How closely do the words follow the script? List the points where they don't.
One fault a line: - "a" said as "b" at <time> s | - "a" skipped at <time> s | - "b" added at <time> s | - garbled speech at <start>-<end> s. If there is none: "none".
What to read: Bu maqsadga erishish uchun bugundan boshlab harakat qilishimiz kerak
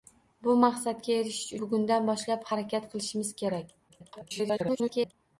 - "uchun" skipped at 1.5 s
- garbled speech at 3.9-5.1 s